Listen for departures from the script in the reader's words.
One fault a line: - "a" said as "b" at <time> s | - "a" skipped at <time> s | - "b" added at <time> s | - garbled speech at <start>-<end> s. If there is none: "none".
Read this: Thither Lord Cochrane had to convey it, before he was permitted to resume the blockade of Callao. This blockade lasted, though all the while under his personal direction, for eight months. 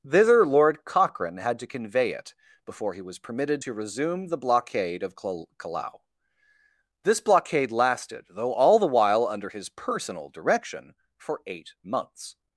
none